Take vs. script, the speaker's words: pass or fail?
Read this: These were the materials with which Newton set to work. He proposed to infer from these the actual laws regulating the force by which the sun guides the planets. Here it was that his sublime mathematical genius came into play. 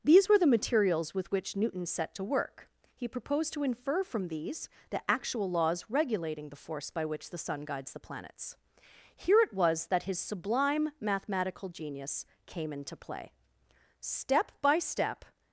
fail